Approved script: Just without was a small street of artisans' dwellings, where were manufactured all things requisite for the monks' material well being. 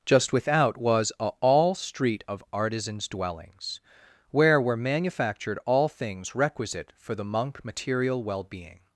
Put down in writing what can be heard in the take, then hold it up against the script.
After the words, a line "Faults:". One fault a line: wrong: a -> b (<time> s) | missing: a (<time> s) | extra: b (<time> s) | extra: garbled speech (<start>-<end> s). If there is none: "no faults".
Just without was a all street of artisans' dwellings, where were manufactured all things requisite for the monk' material well being.
Faults:
wrong: small -> all (1.4 s)
wrong: monks -> monk (7.2 s)